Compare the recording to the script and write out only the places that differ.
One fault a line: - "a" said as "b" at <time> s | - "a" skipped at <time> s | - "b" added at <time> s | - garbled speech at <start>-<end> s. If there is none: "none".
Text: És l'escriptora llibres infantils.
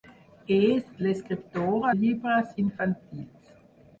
none